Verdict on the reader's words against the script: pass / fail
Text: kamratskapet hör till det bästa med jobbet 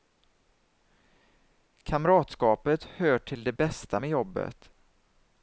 pass